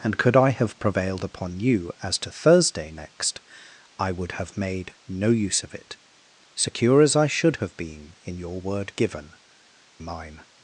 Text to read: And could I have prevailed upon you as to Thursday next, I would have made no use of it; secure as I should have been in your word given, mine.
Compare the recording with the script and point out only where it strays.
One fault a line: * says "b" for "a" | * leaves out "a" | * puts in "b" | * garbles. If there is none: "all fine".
all fine